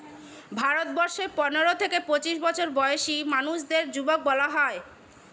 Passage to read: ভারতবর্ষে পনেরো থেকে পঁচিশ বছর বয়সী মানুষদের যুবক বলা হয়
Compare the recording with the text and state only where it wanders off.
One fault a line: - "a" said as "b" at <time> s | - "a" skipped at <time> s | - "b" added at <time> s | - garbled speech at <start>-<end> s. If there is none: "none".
none